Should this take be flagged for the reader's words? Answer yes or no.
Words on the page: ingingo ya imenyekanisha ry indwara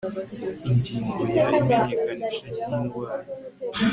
no